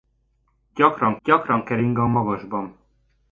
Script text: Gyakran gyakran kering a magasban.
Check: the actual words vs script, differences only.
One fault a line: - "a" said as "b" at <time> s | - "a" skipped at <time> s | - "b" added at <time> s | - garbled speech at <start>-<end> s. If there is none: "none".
none